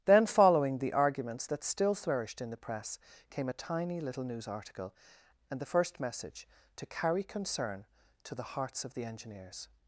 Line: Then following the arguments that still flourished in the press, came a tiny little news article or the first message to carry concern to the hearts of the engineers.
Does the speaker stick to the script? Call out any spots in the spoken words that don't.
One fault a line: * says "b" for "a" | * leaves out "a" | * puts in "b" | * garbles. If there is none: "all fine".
* says "and" for "or"